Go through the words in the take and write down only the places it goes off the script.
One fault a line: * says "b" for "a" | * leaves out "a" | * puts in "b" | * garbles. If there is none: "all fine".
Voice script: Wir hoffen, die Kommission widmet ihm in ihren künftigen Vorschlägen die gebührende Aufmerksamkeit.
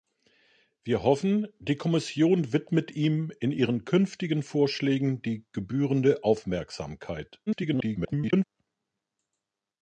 * garbles